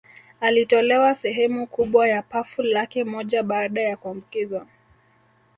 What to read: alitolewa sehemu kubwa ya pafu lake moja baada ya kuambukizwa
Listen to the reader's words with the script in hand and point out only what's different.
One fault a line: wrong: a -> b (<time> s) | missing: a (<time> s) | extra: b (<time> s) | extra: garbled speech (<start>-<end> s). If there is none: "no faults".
no faults